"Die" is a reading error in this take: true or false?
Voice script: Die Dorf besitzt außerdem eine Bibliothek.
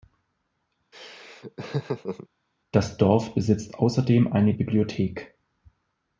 true